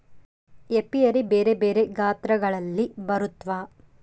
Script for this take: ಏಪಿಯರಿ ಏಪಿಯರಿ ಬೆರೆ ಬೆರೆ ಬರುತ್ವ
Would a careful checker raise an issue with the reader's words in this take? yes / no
yes